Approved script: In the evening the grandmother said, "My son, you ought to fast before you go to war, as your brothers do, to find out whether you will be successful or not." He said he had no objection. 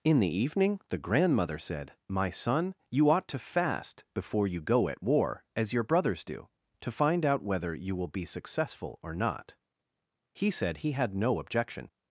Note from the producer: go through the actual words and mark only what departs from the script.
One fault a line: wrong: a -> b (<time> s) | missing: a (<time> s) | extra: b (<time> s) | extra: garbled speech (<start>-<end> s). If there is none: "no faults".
wrong: to -> at (4.9 s)